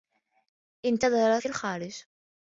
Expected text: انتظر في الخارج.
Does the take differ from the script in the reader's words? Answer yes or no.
no